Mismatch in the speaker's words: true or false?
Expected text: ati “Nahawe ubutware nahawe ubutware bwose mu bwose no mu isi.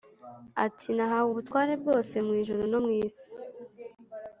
true